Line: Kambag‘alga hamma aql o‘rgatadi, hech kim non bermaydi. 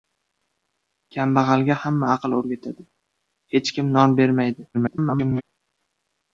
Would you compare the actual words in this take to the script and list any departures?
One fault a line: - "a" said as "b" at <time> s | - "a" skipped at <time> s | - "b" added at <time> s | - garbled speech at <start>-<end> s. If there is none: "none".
- garbled speech at 4.7-5.4 s